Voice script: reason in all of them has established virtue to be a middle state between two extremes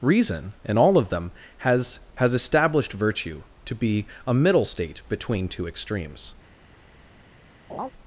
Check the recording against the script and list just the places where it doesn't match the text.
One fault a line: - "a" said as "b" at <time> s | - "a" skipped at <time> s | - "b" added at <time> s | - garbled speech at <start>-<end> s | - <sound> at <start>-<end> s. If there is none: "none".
- "has" added at 2.1 s
- laugh at 7.7-7.9 s